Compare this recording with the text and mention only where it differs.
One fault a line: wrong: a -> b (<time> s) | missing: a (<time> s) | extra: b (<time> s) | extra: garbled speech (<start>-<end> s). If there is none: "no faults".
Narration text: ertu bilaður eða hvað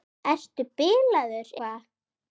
missing: eða (1.5 s)